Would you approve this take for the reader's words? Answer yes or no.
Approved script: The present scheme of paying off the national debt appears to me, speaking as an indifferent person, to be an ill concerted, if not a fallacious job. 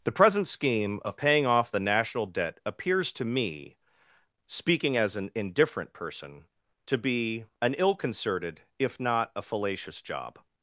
yes